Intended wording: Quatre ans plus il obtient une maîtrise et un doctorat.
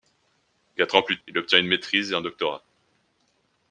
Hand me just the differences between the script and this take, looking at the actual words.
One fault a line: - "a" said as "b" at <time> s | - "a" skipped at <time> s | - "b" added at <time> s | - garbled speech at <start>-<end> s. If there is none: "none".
none